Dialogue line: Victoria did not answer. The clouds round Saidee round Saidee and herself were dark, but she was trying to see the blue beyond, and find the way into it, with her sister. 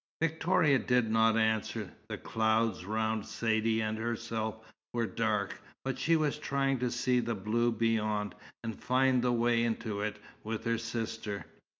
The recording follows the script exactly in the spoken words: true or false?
false